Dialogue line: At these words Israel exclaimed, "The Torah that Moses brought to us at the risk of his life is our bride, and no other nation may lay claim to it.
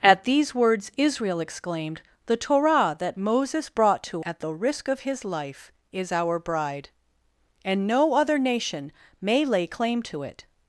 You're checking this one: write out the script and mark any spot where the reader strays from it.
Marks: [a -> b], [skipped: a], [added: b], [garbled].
At these words Israel exclaimed, "The Torah that Moses brought to [skipped: us] at the risk of his life is our bride, and no other nation may lay claim to it.